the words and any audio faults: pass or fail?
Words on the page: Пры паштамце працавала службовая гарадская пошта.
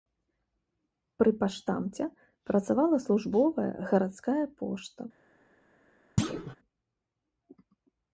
fail